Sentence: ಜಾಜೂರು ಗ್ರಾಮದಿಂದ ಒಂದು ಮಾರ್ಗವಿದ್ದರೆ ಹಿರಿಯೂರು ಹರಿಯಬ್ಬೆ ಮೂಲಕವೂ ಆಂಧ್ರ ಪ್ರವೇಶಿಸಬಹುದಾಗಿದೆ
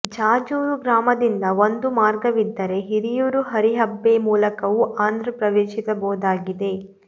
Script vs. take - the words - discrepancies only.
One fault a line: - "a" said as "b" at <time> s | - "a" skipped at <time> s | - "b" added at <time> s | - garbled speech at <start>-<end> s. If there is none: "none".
none